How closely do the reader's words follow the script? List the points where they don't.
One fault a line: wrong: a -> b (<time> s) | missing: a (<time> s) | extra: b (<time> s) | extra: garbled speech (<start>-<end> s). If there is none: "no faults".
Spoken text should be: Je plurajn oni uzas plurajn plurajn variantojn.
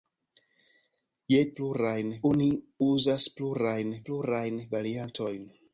no faults